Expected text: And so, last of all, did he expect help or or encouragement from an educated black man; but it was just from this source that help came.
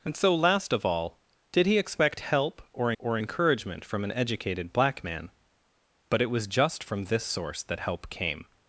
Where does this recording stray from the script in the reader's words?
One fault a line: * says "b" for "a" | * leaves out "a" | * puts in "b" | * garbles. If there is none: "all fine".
all fine